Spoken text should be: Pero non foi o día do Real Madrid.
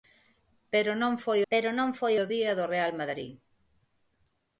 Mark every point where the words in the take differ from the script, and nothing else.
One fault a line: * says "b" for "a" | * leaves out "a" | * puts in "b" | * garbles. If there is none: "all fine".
* puts in "pero non foi"